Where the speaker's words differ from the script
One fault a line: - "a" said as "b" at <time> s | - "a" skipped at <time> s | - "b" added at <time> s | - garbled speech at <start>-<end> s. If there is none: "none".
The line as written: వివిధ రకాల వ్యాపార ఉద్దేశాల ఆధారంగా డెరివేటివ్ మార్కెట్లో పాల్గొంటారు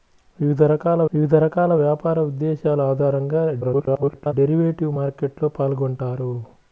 - "వివిధ రకాల" added at 1.1 s
- garbled speech at 3.6-4.3 s